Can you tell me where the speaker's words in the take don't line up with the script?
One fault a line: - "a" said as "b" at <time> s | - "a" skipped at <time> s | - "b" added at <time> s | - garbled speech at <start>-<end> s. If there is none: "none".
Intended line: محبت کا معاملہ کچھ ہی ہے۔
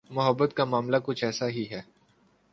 - "ایسا" added at 1.2 s